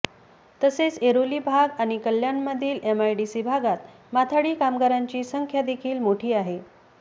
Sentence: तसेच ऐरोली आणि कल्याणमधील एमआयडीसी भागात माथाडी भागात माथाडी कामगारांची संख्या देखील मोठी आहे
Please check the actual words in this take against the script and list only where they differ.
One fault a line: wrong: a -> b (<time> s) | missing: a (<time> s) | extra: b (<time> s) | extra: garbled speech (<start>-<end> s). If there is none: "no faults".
extra: भाग (1.4 s)
missing: भागात माथाडी (4.5 s)